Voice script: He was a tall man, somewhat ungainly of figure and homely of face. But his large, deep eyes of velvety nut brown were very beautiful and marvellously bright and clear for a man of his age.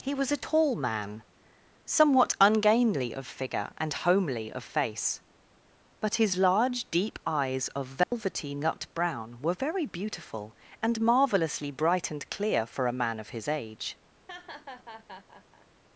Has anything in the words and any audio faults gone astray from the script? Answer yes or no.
yes